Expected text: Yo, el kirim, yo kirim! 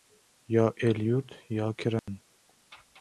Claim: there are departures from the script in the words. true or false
true